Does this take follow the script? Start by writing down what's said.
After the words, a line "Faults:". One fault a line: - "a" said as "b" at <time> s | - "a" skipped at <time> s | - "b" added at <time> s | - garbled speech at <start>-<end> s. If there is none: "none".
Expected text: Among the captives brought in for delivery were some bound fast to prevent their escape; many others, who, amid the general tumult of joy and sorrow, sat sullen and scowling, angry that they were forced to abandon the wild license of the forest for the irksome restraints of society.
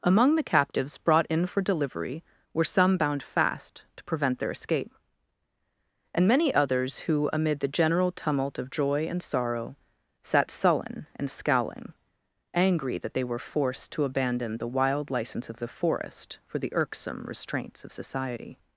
Among the captives brought in for delivery were some bound fast to prevent their escape; and many others, who, amid the general tumult of joy and sorrow, sat sullen and scowling, angry that they were forced to abandon the wild license of the forest for the irksome restraints of society.
Faults:
- "and" added at 6.1 s